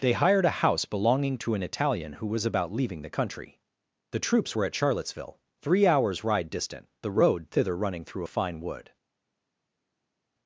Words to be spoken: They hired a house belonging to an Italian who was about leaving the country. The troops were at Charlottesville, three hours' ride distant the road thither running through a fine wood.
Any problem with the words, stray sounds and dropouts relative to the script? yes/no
no